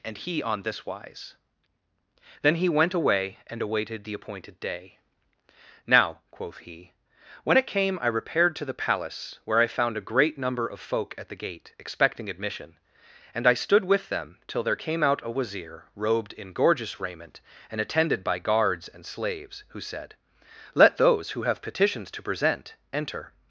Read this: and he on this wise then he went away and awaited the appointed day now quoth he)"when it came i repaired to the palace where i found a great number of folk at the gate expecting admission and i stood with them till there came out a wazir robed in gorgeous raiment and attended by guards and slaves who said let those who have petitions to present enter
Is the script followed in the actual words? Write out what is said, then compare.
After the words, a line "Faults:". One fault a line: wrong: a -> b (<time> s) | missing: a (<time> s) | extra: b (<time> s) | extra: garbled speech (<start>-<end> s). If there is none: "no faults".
and he on this wise then he went away and awaited the appointed day now quoth he)"when it came i repaired to the palace where i found a great number of folk at the gate expecting admission and i stood with them till there came out a wazir robed in gorgeous raiment and attended by guards and slaves who said let those who have petitions to present enter
Faults:
no faults